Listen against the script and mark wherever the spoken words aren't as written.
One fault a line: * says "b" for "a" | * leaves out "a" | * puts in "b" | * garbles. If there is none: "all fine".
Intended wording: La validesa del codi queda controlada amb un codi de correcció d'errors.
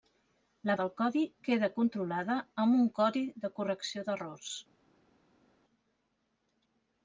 * leaves out "validesa"